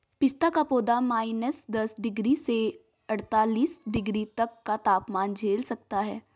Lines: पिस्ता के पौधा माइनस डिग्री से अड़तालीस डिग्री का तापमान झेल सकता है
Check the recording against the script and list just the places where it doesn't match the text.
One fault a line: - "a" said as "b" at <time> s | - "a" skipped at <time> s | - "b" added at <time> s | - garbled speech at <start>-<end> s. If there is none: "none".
- "के" said as "का" at 0.5 s
- "दस" added at 1.7 s
- "तक" added at 4.4 s